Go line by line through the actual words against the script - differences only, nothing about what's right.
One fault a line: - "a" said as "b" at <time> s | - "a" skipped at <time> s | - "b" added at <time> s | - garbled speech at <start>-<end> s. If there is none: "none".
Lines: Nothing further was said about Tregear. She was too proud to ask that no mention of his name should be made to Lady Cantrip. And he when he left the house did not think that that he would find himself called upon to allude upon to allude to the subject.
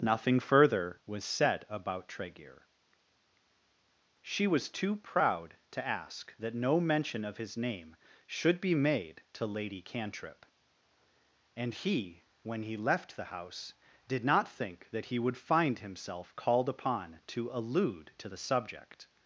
- "that" skipped at 15.1 s
- "upon to allude" skipped at 18.1 s